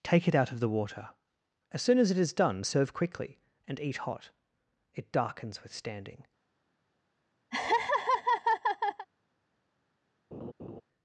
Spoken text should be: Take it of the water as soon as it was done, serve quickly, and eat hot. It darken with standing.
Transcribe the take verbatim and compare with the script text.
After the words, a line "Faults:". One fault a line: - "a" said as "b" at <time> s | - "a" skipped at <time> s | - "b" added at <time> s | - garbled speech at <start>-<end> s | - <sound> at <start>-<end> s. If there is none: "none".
Take it out of the water as soon as it is done, serve quickly, and eat hot. It darkens with standing.
Faults:
- "out" added at 0.3 s
- "was" said as "is" at 2.2 s
- "darken" said as "darkens" at 5.1 s
- laugh at 7.5-9.1 s
- laugh at 10.3-10.8 s